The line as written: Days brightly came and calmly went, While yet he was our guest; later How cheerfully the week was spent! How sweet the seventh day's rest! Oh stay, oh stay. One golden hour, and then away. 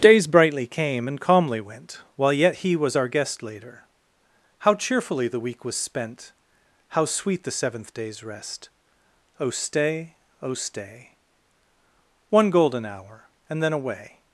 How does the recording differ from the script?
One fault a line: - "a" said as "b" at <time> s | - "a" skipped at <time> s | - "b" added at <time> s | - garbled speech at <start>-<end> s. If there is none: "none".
none